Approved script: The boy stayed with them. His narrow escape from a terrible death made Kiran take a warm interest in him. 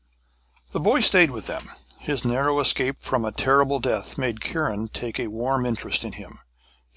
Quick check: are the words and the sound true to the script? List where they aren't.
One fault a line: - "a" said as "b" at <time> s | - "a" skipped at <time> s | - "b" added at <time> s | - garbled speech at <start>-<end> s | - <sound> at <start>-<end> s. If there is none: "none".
none